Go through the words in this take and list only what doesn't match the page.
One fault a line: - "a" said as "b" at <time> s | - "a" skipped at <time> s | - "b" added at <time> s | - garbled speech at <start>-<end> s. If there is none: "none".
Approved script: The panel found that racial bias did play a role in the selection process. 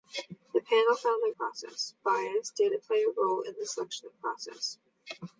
- "racial" said as "process" at 1.4 s